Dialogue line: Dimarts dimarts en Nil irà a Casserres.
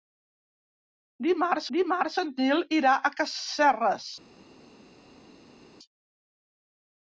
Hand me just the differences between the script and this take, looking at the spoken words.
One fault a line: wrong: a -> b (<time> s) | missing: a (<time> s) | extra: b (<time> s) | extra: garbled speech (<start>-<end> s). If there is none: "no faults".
no faults